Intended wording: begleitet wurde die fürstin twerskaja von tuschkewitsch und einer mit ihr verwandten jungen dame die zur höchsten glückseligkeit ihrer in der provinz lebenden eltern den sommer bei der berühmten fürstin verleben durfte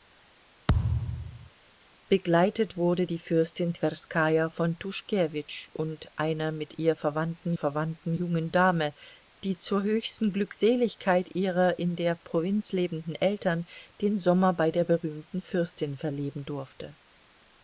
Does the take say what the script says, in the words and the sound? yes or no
no